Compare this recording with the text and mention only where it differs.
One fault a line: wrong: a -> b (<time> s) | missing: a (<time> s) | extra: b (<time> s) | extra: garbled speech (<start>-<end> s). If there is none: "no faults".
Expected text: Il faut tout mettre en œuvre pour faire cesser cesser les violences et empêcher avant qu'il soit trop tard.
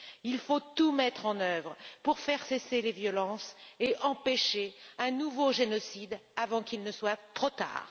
missing: cesser (2.8 s)
extra: un nouveau génocide (5.0 s)
extra: ne (6.8 s)